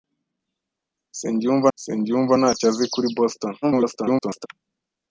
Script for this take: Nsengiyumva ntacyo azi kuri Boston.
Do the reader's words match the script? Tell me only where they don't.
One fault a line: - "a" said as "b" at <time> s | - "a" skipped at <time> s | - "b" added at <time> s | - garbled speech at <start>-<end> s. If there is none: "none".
- "nsengiyumva" added at 1.7 s
- garbled speech at 3.6-4.5 s